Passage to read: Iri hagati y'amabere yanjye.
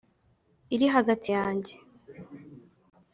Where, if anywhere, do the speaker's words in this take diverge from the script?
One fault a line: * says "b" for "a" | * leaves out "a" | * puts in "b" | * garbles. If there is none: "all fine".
* leaves out "y'amabere"